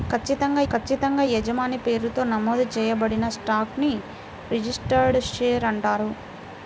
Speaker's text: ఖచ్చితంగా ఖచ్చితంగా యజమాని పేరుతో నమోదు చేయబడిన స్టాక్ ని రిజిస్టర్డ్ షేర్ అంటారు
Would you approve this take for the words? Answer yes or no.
yes